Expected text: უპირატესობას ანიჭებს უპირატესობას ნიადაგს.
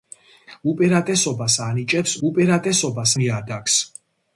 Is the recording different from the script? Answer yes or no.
no